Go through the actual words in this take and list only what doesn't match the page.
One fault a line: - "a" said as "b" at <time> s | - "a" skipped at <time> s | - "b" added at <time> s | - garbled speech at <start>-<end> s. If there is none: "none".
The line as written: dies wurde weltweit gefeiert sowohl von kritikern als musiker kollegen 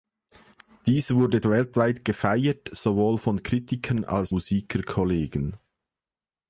none